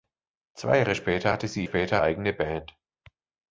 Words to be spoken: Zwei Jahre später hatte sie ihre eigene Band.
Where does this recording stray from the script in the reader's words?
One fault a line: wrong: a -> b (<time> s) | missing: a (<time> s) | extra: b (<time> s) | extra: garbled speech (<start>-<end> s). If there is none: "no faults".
wrong: ihre -> später (1.6 s)